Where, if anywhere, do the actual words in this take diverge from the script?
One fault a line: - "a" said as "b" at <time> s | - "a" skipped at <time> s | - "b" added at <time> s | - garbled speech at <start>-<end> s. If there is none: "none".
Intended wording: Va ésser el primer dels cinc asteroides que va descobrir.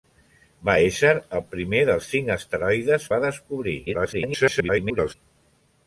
- "que" skipped at 3.1 s
- garbled speech at 3.9-5.1 s